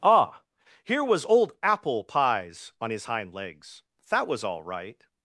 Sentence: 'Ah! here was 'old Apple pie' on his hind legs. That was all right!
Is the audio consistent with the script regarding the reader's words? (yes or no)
no